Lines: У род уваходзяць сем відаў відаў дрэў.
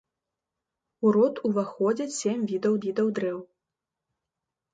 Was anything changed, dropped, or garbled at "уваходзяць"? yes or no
no